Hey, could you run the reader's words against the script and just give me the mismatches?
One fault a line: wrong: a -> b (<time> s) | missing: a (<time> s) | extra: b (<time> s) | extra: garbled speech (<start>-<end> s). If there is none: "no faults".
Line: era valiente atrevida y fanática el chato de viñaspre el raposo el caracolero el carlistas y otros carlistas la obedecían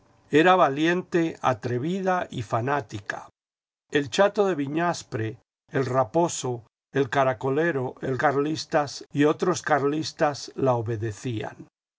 no faults